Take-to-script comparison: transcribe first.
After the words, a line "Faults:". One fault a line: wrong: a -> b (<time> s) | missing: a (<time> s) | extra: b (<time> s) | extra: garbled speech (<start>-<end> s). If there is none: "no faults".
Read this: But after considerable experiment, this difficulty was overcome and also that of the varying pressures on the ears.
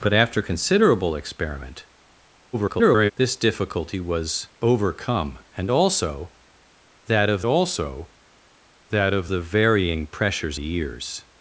But after considerable experiment, [garbled] this difficulty was overcome and also that of also that of the varying pressures the ears.
Faults:
extra: garbled speech (2.5-3.1 s)
extra: also that of (7.4 s)
missing: on (10.6 s)